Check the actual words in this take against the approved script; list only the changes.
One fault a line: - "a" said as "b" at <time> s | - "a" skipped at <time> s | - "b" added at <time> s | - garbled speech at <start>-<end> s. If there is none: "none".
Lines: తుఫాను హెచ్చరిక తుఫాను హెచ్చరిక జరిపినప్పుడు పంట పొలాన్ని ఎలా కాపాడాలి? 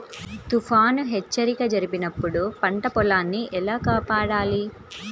- "తుఫాను హెచ్చరిక" skipped at 1.6 s